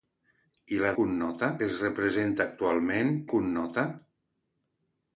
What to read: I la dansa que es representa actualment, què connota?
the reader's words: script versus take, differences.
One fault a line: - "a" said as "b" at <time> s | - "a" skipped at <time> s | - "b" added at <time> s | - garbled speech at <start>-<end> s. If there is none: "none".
- "dansa" said as "connota" at 1.0 s
- "què" skipped at 3.2 s